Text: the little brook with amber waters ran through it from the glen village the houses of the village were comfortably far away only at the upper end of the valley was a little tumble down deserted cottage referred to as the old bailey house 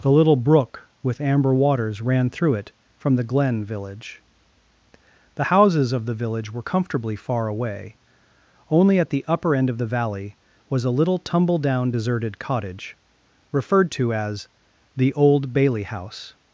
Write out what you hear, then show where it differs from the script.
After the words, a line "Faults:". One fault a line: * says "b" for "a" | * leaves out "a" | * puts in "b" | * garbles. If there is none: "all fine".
the little brook with amber waters ran through it from the glen village the houses of the village were comfortably far away only at the upper end of the valley was a little tumble down deserted cottage referred to as the old bailey house
Faults:
all fine